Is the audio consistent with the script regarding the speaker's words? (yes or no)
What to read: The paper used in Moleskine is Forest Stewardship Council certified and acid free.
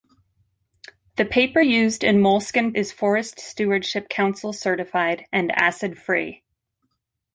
yes